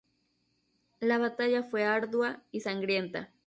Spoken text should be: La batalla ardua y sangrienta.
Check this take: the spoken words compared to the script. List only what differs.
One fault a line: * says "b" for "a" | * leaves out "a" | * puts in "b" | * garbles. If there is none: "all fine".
* puts in "fue"